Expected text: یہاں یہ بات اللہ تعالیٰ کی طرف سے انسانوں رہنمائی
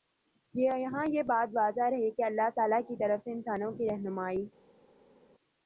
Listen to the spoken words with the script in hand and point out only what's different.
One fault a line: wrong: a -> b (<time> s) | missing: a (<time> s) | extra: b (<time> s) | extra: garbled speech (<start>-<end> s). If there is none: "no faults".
extra: واضح رہے کہ (1.5 s)
extra: کی (3.7 s)